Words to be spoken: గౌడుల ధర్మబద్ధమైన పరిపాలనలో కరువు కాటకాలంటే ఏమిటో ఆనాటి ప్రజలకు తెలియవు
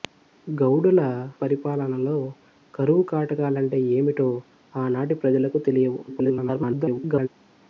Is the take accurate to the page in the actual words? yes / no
no